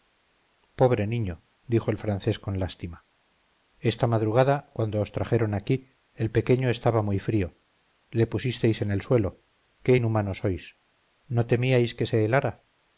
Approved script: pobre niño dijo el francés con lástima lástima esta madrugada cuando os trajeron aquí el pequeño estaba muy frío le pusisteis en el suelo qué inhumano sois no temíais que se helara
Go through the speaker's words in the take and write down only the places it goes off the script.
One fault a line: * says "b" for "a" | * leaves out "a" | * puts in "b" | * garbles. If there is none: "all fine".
* leaves out "lástima"